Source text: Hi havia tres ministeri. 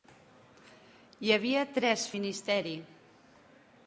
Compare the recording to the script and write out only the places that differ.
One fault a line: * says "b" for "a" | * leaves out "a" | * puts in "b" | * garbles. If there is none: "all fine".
all fine